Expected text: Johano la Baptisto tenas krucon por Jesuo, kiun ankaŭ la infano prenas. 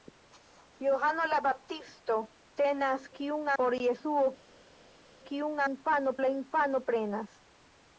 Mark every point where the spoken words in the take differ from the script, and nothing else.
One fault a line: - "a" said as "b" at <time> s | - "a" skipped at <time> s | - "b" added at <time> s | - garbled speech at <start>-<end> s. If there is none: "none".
- "krucon" said as "kiun" at 3.2 s
- "ankaŭ" said as "infano" at 5.7 s